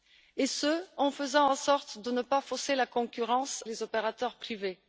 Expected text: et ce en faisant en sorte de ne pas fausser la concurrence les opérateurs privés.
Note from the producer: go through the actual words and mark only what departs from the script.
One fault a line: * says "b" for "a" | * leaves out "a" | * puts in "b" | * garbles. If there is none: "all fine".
all fine